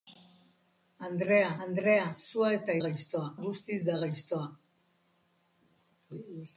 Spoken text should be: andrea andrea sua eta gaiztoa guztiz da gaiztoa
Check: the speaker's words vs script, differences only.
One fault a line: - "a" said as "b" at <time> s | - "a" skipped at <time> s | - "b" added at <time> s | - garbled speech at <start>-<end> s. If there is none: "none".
none